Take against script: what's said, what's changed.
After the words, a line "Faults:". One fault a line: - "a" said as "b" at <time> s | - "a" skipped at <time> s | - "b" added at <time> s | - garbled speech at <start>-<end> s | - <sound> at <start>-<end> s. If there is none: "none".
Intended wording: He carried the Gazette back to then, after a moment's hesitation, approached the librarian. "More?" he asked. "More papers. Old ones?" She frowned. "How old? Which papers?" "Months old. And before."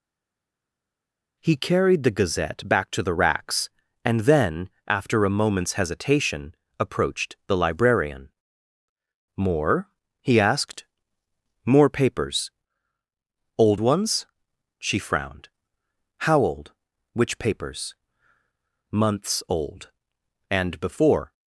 He carried the Gazette back to the racks and then, after a moment's hesitation, approached the librarian. "More?" he asked. "More papers. Old ones?" She frowned. "How old? Which papers?" "Months old. And before."
Faults:
- "the racks and" added at 3.0 s